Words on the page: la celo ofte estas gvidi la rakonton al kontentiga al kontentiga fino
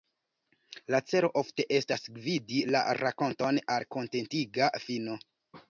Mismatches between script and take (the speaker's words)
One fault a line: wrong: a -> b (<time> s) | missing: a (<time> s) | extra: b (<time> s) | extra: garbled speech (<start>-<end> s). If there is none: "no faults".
missing: al kontentiga (4.7 s)